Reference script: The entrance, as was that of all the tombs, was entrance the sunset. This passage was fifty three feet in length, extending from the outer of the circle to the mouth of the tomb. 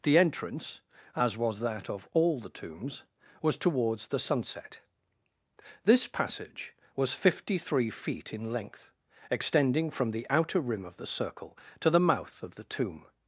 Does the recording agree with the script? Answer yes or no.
no